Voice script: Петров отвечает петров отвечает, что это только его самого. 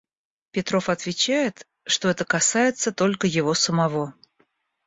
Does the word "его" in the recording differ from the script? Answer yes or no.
no